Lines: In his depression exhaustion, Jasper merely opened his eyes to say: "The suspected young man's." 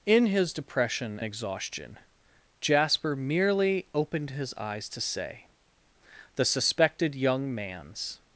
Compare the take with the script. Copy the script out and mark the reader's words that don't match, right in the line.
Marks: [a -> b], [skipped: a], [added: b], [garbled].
In his depression exhaustion, Jasper merely opened his eyes to say: "The suspected young man's."